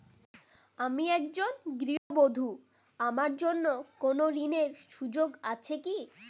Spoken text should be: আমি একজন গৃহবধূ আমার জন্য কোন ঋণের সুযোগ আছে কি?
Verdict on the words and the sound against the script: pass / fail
fail